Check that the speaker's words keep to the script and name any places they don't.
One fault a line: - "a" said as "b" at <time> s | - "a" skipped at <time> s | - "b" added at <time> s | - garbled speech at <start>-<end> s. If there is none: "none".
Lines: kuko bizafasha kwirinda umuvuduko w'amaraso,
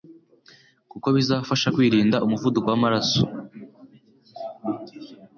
none